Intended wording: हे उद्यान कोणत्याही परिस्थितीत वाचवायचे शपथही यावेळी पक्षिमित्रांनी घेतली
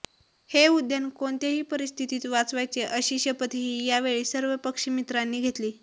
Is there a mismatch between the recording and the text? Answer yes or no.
yes